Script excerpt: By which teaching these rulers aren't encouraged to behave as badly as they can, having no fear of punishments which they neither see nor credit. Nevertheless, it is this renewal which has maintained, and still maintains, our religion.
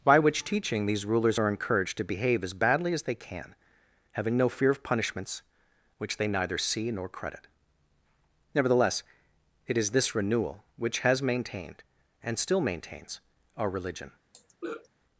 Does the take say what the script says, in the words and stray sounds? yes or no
no